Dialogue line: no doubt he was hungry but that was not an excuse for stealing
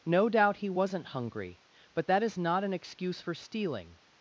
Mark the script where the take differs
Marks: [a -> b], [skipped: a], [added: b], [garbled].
no doubt he [was -> wasn't] hungry but that [was -> is] not an excuse for stealing